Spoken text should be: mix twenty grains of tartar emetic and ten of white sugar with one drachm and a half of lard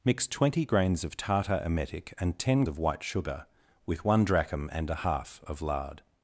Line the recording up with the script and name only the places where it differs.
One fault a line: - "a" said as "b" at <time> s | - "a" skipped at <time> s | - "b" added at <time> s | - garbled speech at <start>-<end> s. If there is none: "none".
none